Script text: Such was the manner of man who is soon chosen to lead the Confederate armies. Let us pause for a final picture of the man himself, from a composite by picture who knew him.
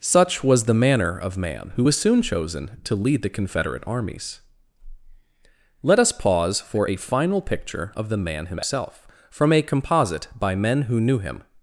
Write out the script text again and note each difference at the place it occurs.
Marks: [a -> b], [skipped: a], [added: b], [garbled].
Such was the manner of man who [is -> was] soon chosen to lead the Confederate armies. Let us pause for a final picture of the man himself, from a composite by [picture -> men] who knew him.